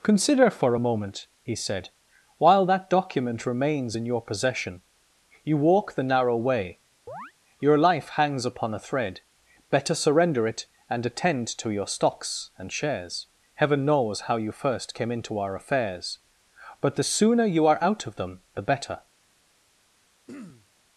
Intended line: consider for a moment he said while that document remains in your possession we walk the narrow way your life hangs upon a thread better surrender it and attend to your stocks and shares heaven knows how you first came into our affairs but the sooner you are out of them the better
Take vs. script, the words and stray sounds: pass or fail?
fail